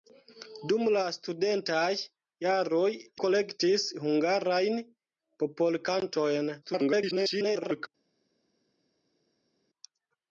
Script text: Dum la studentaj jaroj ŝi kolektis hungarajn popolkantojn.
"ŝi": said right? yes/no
no